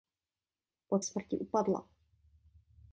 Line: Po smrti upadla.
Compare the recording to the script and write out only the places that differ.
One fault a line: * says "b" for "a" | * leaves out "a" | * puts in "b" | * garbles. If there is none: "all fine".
all fine